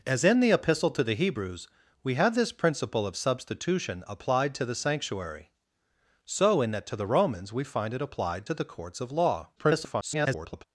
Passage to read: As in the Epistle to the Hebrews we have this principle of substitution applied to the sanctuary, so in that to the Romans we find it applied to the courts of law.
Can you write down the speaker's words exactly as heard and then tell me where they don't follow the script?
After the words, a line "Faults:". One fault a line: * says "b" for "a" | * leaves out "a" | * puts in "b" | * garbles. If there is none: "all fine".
As in the Epistle to the Hebrews we have this principle of substitution applied to the sanctuary, so in that to the Romans we find it applied to the courts of law. [garbled]
Faults:
* garbles